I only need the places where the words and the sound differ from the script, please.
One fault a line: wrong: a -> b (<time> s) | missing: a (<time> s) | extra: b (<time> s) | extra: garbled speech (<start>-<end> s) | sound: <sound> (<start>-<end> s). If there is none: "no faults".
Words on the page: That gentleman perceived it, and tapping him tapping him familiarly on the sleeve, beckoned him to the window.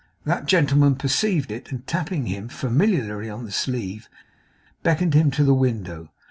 missing: tapping him (2.5 s)